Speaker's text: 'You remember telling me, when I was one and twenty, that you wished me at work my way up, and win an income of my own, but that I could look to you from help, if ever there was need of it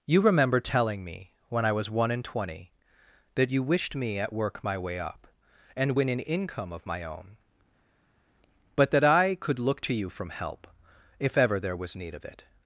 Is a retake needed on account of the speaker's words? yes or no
no